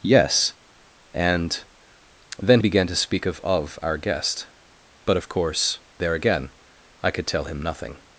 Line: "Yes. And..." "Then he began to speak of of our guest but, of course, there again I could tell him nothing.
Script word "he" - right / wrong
wrong